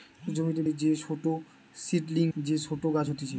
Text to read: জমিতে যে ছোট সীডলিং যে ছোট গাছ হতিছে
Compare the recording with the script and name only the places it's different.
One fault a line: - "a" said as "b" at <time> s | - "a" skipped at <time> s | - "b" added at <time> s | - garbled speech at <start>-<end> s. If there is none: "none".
none